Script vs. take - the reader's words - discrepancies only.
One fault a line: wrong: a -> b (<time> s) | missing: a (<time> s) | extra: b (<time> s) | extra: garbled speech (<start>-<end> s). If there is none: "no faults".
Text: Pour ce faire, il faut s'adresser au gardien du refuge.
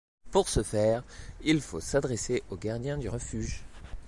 no faults